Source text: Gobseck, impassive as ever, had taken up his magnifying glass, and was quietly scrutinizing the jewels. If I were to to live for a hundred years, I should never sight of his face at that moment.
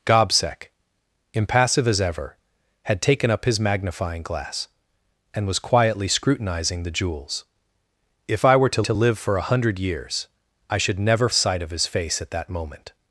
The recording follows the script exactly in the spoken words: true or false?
true